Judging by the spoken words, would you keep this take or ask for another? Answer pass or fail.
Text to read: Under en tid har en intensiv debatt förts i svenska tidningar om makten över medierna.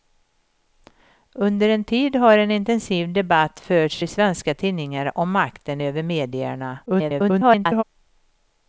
fail